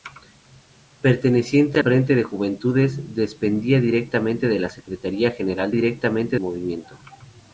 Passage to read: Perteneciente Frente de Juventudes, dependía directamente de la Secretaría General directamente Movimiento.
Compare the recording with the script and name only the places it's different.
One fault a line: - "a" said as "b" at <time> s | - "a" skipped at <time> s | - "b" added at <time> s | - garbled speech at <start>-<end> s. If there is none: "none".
none